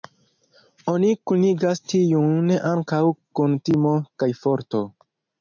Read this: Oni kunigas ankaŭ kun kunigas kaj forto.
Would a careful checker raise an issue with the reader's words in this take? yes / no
yes